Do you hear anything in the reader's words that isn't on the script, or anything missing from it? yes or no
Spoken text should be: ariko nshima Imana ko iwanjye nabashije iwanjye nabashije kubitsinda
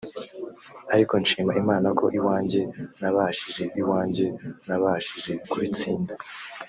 no